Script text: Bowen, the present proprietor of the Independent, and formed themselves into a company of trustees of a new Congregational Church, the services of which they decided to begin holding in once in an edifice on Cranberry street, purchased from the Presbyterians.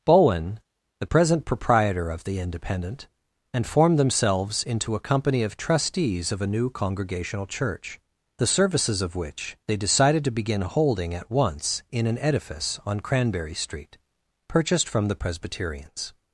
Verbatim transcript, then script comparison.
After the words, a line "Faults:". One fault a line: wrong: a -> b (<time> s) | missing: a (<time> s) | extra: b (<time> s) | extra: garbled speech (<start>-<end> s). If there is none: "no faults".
Bowen, the present proprietor of the Independent, and formed themselves into a company of trustees of a new Congregational Church, the services of which they decided to begin holding at once in an edifice on Cranberry street, purchased from the Presbyterians.
Faults:
wrong: in -> at (11.1 s)